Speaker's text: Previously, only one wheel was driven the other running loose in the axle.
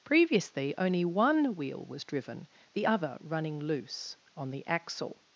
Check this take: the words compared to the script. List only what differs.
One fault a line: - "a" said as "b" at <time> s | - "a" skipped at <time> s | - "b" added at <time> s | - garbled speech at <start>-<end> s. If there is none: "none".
- "in" said as "on" at 4.3 s